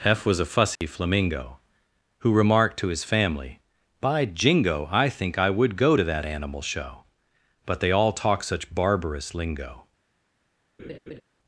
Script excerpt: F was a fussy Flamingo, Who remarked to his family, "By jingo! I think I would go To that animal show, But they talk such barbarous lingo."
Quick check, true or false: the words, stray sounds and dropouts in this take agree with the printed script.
false